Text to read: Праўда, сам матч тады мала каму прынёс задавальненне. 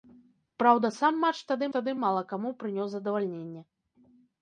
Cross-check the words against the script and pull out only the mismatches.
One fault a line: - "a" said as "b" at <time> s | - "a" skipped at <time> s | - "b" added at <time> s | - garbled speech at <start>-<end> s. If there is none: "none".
- "тады" added at 1.8 s